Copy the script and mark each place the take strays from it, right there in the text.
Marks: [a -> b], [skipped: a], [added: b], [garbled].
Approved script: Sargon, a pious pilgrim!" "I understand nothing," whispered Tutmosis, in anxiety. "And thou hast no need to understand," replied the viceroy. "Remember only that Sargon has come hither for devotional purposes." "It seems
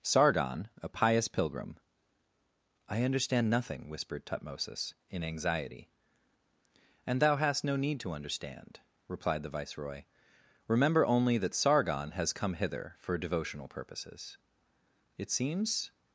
Sargon, a pious pilgrim!" "I understand nothing," whispered Tutmosis, in anxiety. "And thou hast no need to understand," replied the viceroy. "Remember only that Sargon has come hither for devotional purposes." "It seems